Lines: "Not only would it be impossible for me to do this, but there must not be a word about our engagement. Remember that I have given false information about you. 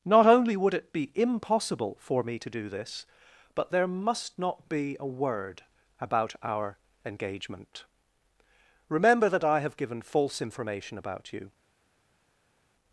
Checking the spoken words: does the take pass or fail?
pass